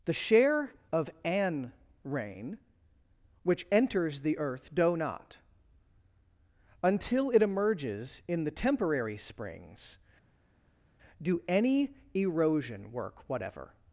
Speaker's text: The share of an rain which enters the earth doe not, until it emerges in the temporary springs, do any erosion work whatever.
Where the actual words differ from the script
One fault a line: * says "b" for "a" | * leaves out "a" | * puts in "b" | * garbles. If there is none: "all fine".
all fine